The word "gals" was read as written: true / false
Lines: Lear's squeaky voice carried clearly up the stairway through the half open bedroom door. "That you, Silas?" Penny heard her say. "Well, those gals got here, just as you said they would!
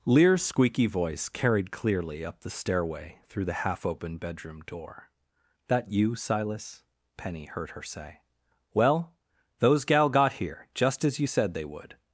false